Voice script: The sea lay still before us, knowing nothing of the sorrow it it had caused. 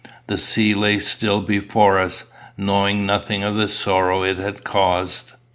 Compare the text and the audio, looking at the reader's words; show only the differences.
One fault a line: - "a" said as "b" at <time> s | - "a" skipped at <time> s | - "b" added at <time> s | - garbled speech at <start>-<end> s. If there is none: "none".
- "it" skipped at 4.4 s